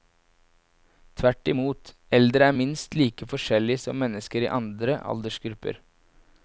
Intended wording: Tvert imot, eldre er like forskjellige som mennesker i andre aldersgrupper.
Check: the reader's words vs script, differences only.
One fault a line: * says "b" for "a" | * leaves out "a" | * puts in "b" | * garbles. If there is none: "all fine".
* puts in "minst"